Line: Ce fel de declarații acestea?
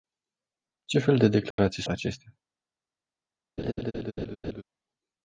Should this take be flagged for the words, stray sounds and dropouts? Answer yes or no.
yes